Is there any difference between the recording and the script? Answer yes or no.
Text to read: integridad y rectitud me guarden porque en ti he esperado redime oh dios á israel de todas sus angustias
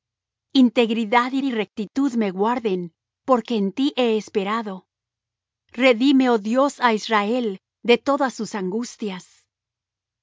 yes